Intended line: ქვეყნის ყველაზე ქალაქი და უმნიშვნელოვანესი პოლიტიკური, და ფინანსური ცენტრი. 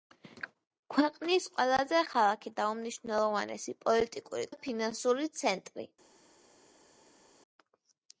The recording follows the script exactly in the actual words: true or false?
true